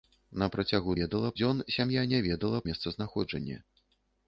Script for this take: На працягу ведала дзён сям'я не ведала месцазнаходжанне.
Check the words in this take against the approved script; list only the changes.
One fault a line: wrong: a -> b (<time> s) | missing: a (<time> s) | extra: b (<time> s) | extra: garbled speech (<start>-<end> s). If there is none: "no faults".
no faults